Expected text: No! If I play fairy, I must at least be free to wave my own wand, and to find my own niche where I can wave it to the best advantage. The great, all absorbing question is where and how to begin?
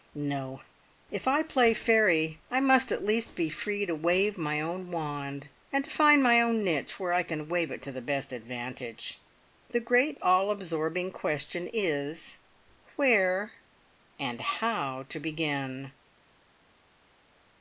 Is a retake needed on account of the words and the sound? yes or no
no